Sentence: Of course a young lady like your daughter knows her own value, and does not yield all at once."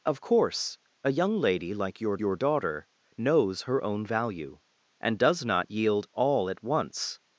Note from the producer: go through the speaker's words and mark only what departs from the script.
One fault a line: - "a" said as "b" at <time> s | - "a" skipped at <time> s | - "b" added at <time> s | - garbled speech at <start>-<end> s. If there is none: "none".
- "your" added at 2.2 s